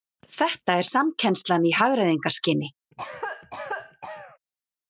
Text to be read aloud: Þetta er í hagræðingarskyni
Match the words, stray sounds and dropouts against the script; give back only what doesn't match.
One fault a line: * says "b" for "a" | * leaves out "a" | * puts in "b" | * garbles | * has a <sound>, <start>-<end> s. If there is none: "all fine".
* puts in "samkennslan"
* has a cough, 2.9-4.4 s